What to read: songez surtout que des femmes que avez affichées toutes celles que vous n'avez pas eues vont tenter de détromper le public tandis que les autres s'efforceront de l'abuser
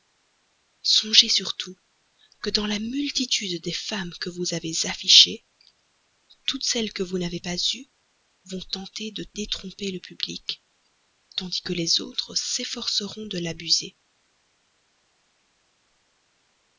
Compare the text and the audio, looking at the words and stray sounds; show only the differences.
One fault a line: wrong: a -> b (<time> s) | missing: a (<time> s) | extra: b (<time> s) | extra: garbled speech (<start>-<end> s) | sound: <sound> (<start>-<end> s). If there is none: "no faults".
extra: dans la multitude (2.5 s)
extra: vous (4.3 s)